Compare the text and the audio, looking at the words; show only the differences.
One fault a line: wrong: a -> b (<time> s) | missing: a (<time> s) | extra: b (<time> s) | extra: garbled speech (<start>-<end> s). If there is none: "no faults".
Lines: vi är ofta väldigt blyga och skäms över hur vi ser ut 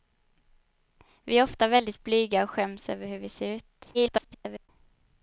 extra: garbled speech (3.9-4.7 s)